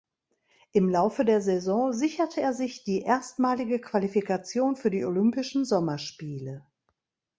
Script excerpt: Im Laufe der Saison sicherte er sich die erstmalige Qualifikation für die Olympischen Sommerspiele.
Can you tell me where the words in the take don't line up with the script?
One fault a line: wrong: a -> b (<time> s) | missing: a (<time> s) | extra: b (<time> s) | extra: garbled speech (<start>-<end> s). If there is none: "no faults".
no faults